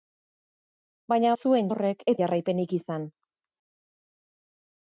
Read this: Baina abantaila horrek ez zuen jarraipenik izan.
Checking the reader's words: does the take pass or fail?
fail